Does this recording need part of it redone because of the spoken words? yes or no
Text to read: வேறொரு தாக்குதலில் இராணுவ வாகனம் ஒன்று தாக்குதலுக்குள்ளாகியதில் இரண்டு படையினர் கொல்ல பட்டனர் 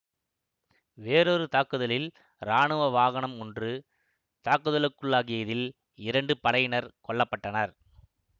no